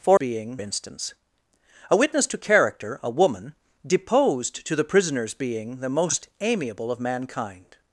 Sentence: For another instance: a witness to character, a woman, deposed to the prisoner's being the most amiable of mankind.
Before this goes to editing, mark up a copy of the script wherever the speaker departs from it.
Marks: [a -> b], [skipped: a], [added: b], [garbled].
For [another -> being] instance: a witness to character, a woman, deposed to the prisoner's being the most amiable of mankind.